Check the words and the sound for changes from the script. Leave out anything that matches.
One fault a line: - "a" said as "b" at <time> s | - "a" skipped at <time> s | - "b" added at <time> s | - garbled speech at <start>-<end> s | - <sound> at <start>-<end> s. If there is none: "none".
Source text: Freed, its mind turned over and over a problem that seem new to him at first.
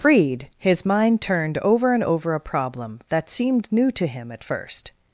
- "its" said as "his" at 0.6 s
- "seem" said as "seemed" at 3.3 s